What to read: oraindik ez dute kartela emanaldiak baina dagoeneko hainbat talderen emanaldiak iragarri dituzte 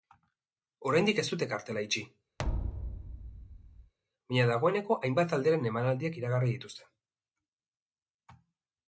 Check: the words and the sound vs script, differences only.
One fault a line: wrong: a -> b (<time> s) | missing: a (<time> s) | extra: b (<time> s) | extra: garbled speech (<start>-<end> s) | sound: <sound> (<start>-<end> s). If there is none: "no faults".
wrong: emanaldiak -> itxi (1.9 s)
sound: thud (2.4-3.9 s)